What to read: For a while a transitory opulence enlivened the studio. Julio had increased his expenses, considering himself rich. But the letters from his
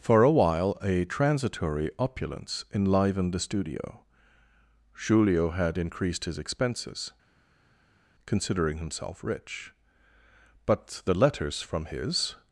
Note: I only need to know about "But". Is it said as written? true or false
true